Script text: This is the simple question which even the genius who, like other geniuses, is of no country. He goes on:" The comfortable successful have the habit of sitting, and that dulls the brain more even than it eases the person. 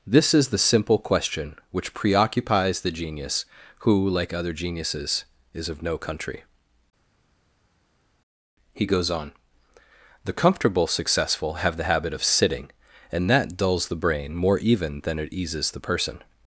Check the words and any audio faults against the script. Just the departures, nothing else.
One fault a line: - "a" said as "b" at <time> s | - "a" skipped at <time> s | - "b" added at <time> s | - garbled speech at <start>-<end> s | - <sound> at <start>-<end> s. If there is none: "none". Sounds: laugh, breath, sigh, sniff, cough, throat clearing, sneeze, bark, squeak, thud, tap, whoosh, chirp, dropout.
- "even" said as "preoccupies" at 1.9 s